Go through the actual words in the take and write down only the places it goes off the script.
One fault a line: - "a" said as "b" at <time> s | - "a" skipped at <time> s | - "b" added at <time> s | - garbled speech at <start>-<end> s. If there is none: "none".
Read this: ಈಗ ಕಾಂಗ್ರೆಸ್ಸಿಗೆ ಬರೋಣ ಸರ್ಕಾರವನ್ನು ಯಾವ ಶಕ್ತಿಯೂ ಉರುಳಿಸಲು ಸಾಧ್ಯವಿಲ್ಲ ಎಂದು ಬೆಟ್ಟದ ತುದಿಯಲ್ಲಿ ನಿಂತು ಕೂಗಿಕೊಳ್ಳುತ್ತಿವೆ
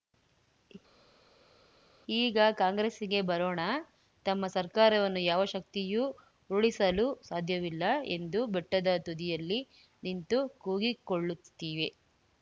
- "ತಮ್ಮ" added at 4.2 s